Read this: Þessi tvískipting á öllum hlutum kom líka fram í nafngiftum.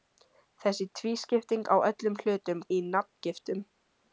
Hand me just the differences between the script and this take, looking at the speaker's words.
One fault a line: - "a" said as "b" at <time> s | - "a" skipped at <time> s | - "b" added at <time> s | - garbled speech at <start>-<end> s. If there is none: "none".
- "kom líka fram" skipped at 2.6 s